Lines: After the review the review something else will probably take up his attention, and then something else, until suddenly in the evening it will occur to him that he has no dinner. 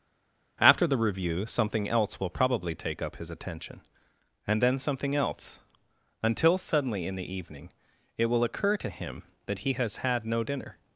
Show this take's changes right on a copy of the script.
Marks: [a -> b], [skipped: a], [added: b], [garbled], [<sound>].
After the review [skipped: the review] something else will probably take up his attention, and then something else, until suddenly in the evening it will occur to him that he has [added: had] no dinner.